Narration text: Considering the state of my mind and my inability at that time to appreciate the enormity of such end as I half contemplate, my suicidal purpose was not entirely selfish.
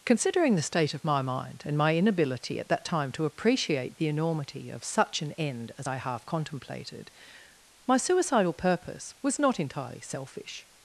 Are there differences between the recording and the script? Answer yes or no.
yes